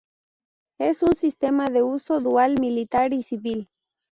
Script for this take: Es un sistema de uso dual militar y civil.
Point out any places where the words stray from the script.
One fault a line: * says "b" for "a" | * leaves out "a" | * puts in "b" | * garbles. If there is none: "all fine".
all fine